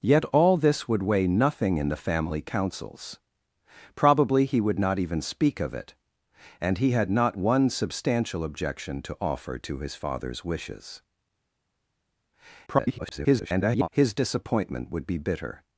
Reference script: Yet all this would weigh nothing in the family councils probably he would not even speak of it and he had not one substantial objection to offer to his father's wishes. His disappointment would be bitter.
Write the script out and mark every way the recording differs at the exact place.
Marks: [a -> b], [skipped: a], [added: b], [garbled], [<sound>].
Yet all this would weigh nothing in the family councils probably he would not even speak of it and he had not one substantial objection to offer to his father's wishes. [garbled] His disappointment would be bitter.